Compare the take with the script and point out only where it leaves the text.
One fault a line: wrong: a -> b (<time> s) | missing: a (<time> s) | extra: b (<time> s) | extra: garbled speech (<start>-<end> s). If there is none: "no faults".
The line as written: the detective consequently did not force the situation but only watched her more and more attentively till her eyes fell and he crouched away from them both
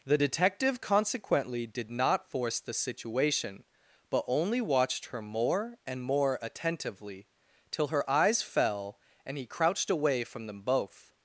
no faults